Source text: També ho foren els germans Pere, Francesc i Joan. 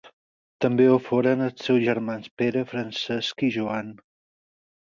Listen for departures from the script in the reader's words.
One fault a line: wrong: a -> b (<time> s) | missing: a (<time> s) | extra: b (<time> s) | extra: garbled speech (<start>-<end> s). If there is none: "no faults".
extra: seus (1.7 s)